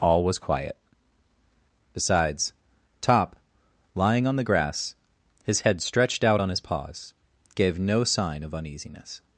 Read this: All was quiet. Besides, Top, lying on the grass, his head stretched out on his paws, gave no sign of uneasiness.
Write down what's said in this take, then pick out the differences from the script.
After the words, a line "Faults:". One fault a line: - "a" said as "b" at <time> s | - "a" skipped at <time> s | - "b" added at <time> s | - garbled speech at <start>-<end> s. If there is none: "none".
All was quiet. Besides, Top, lying on the grass, his head stretched out on his paws, gave no sign of uneasiness.
Faults:
none